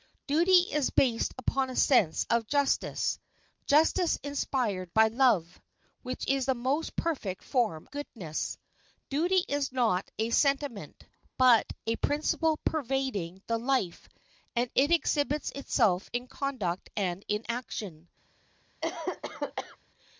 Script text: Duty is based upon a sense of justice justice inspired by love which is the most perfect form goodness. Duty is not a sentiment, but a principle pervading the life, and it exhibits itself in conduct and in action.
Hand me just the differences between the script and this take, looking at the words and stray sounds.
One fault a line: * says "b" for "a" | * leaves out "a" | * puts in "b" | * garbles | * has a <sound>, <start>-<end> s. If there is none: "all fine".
* has a cough, 18.8-19.8 s